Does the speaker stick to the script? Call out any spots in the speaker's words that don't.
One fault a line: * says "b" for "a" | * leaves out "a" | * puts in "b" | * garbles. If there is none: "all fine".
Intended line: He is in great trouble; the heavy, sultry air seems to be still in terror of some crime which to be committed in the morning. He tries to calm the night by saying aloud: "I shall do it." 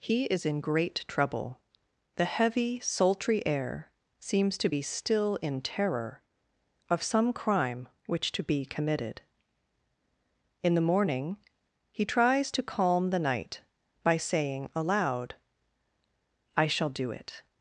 all fine